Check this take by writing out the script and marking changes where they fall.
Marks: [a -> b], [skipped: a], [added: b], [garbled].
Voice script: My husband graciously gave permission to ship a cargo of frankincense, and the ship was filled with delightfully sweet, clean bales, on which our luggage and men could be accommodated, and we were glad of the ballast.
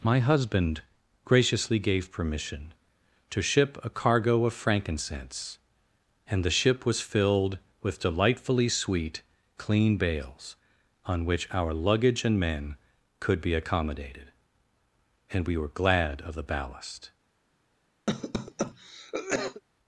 My husband graciously gave permission to ship a cargo of frankincense, and the ship was filled with delightfully sweet, clean bales, on which our luggage and men could be accommodated, and we were glad of the ballast.